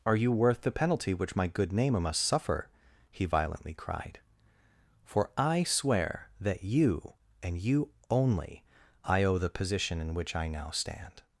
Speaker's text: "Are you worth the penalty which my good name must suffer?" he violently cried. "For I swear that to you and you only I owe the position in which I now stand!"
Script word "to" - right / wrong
wrong